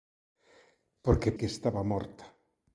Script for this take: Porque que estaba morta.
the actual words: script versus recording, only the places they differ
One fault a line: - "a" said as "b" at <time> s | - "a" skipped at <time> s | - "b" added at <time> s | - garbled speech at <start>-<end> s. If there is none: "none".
none